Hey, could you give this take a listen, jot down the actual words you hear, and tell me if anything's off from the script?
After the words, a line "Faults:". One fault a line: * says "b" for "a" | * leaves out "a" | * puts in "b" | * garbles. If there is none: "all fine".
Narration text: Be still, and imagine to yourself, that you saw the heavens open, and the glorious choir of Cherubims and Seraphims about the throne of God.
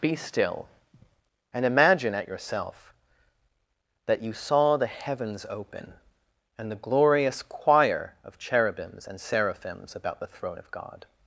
Be still, and imagine at yourself, that you saw the heavens open, and the glorious choir of Cherubims and Seraphims about the throne of God.
Faults:
* says "at" for "to"